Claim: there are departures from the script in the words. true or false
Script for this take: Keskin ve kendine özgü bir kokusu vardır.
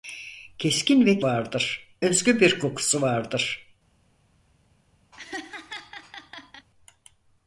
true